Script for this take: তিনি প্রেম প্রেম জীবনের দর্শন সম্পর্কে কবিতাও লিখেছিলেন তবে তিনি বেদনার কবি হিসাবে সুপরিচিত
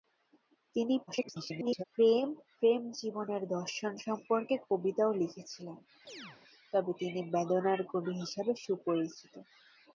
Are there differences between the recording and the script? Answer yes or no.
yes